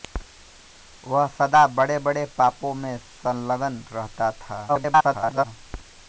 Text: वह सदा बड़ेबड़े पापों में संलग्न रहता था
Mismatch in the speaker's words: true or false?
true